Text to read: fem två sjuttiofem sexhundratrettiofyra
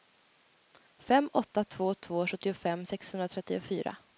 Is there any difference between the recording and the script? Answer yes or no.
yes